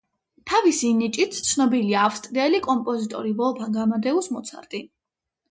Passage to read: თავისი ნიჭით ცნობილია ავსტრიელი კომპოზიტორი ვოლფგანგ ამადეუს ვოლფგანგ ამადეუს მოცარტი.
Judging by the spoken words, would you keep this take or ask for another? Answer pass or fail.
fail